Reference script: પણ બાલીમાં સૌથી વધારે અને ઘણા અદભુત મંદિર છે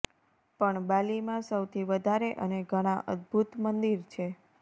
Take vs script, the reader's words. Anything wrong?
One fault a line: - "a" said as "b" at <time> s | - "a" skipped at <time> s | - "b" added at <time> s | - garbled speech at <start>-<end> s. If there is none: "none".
none